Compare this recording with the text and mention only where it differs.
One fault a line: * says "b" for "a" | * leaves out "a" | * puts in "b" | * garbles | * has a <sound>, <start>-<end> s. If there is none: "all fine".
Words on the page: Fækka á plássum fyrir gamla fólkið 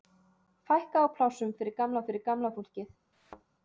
* puts in "fyrir gamla"
* has a thud, 3.1-3.4 s